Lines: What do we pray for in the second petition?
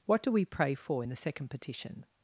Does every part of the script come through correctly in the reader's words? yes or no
yes